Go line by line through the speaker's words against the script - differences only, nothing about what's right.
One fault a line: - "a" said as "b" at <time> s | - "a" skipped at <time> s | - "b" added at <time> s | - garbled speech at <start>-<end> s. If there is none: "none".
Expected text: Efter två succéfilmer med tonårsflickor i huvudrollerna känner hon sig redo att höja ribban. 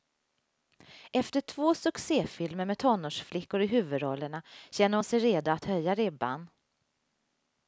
none